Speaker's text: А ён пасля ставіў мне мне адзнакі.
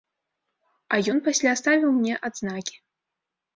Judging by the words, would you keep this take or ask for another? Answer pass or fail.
fail